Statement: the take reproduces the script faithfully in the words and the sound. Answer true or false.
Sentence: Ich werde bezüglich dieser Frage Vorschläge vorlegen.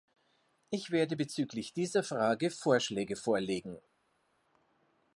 true